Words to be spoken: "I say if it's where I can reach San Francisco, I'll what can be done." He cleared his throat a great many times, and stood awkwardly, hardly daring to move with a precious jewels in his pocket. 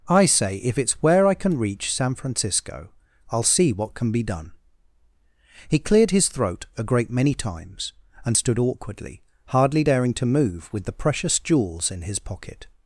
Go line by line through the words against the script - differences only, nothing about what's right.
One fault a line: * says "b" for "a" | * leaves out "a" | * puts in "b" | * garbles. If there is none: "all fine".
* puts in "see"
* says "the" for "a"